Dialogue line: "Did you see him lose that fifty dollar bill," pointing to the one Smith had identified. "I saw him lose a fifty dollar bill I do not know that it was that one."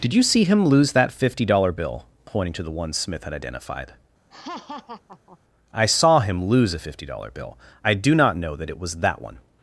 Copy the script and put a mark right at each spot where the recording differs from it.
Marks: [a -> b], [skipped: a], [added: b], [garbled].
"Did you see him lose that fifty dollar bill," pointing to the one Smith had identified. "I saw him lose a fifty dollar bill I do not know that it was that one."